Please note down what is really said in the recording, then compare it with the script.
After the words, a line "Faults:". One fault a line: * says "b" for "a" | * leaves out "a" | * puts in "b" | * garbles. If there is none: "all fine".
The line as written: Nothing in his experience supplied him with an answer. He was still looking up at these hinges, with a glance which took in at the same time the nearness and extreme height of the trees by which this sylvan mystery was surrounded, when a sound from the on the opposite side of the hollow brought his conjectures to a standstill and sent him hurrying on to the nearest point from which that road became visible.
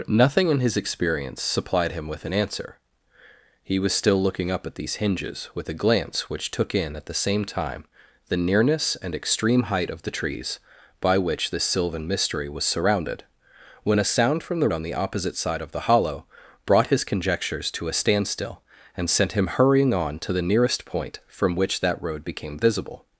Nothing in his experience supplied him with an answer. He was still looking up at these hinges, with a glance which took in at the same time the nearness and extreme height of the trees by which this sylvan mystery was surrounded, when a sound from the on the opposite side of the hollow brought his conjectures to a standstill and sent him hurrying on to the nearest point from which that road became visible.
Faults:
all fine